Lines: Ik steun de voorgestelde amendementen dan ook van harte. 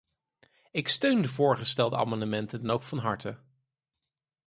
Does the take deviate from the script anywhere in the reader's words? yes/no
no